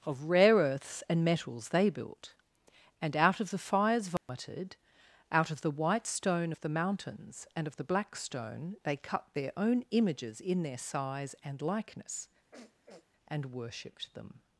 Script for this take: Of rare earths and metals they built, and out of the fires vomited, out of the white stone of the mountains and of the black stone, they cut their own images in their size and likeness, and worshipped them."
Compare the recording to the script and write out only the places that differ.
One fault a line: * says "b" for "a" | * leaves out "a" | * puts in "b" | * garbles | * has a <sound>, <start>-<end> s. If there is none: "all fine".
* has a dropout, 4.2-4.3 s
* has a sniff, 12.5-13.1 s